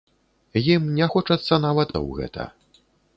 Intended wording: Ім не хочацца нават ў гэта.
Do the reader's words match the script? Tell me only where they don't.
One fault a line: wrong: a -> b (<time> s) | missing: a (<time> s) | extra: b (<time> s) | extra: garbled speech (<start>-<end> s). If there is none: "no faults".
no faults